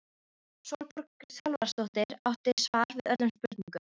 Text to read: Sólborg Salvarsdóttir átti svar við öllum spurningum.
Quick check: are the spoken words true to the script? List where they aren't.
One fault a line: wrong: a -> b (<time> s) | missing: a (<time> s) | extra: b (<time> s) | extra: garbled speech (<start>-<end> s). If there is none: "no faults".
no faults